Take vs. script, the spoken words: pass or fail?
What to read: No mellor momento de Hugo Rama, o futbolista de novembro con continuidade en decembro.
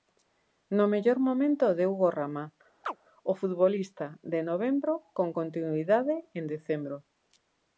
pass